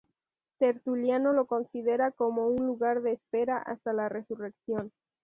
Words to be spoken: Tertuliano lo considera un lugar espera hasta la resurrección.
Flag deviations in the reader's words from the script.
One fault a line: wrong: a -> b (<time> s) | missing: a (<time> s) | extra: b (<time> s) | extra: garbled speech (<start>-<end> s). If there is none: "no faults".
extra: como (2.1 s)
extra: de (3.0 s)